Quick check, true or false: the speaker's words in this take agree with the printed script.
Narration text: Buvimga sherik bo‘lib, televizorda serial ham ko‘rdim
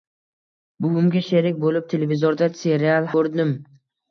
false